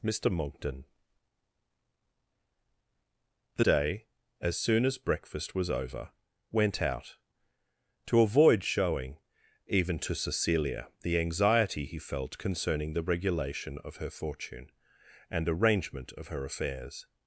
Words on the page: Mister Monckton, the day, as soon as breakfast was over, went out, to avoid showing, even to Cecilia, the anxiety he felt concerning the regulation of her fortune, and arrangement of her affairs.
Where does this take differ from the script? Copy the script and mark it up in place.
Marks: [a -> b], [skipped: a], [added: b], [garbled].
Mister Monckton, the day, as soon as breakfast was over, went out, to avoid showing, even to Cecilia, the anxiety he felt concerning the regulation of her fortune, and arrangement of her affairs.